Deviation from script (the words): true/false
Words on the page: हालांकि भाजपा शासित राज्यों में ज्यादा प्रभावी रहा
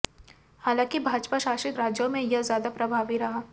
true